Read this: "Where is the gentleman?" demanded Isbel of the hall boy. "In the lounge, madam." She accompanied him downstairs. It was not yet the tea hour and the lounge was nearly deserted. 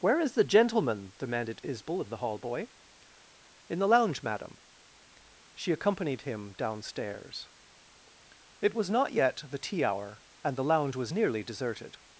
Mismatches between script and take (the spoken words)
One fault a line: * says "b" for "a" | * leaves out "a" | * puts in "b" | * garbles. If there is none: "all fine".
all fine